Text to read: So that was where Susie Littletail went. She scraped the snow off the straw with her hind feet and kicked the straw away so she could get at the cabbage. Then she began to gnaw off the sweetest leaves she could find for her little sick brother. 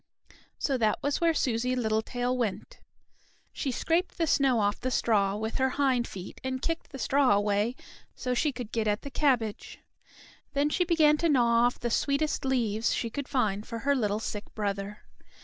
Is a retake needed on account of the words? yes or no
no